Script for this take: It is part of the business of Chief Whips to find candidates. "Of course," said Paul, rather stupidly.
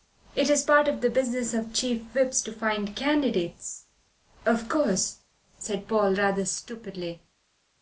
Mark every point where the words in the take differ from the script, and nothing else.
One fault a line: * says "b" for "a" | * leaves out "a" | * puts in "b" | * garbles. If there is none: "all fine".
all fine